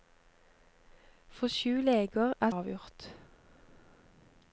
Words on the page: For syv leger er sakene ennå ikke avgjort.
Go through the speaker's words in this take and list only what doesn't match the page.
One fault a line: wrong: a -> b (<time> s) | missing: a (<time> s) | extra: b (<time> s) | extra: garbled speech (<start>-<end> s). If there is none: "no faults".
missing: sakene ennå ikke (2.5 s)